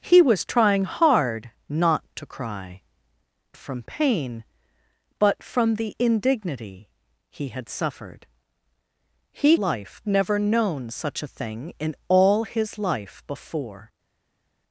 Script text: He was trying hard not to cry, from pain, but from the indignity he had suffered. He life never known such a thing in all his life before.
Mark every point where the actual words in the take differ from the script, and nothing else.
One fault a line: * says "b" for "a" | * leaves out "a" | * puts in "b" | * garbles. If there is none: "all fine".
all fine